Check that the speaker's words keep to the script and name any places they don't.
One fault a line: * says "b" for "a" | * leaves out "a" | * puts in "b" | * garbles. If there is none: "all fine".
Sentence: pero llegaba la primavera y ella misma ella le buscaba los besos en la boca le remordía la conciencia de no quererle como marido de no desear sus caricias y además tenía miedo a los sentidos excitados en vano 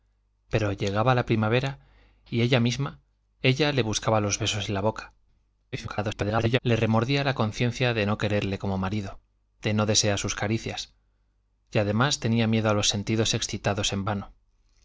* garbles